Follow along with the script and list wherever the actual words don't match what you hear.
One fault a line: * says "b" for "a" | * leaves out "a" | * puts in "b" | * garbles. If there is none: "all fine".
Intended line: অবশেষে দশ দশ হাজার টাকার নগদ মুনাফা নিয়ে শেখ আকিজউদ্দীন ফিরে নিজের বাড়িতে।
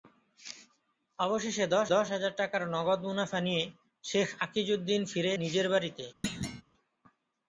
all fine